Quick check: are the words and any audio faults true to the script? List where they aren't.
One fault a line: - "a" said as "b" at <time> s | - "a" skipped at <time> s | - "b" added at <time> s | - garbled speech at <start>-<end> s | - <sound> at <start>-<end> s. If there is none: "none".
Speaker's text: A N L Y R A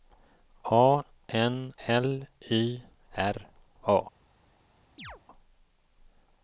- chirp at 5.0-5.2 s